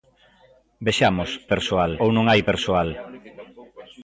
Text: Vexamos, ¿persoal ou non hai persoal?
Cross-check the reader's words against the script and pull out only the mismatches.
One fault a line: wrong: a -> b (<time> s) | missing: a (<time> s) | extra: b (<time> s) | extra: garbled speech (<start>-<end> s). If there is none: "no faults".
no faults